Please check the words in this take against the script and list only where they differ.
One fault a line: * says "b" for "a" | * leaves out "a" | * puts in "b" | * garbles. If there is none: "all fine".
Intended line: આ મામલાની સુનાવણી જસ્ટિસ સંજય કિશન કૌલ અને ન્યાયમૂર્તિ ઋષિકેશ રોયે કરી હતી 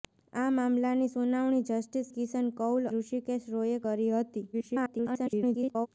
* leaves out "સંજય"
* leaves out "અને ન્યાયમૂર્તિ"
* garbles